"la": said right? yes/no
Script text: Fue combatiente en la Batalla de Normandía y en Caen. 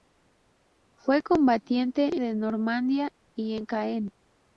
no